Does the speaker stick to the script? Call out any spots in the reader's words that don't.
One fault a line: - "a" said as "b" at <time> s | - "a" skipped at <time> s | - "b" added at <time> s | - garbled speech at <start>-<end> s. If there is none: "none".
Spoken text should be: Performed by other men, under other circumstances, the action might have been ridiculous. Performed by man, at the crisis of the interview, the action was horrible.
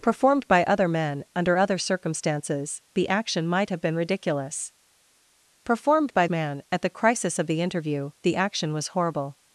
none